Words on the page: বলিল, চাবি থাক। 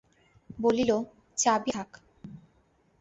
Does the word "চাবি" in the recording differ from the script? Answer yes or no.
no